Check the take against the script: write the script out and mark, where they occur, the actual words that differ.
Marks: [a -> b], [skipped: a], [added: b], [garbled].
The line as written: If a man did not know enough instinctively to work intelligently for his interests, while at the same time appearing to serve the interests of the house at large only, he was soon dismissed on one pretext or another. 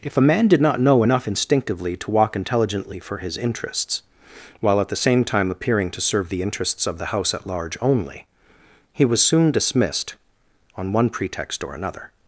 If a man did not know enough instinctively to [work -> walk] intelligently for his interests, while at the same time appearing to serve the interests of the house at large only, he was soon dismissed on one pretext or another.